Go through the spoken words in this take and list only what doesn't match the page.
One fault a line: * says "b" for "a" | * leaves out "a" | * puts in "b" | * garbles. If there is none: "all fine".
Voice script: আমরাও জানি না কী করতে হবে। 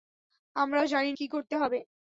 * leaves out "না"